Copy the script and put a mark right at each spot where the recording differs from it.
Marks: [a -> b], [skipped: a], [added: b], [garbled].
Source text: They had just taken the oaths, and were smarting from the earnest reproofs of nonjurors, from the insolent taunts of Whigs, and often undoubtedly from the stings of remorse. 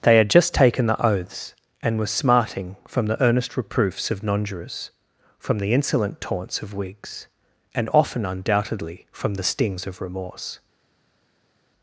They had just taken the oaths, and were smarting from the earnest reproofs of nonjurors, from the insolent taunts of Whigs, and often undoubtedly from the stings of remorse.